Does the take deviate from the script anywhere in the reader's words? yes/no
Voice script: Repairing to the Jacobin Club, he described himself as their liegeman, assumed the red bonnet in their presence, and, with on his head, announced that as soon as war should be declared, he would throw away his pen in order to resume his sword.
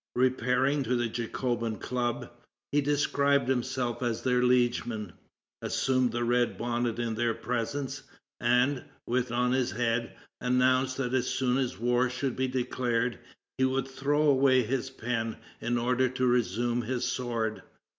no